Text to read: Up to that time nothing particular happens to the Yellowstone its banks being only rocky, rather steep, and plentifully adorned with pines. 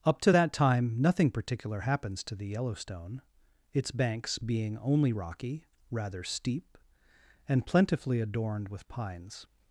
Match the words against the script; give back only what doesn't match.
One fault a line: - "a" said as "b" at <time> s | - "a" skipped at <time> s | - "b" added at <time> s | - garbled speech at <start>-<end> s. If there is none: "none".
none